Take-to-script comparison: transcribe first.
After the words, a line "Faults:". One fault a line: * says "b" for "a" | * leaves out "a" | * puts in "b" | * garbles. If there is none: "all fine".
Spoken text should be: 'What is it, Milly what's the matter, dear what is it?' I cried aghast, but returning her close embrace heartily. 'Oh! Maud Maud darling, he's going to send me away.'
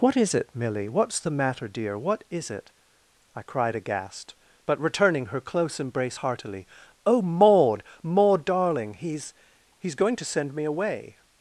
'What is it, Milly what's the matter, dear what is it?' I cried aghast, but returning her close embrace heartily. 'Oh! Maud Maud darling, he's he's going to send me away.'
Faults:
* puts in "he's"